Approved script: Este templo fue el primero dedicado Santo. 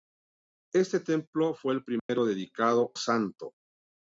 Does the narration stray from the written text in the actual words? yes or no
no